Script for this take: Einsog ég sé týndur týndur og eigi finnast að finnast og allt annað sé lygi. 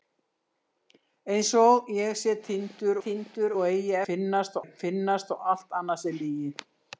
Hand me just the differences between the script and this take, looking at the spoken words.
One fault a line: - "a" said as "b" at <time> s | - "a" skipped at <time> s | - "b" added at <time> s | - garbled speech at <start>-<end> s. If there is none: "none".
none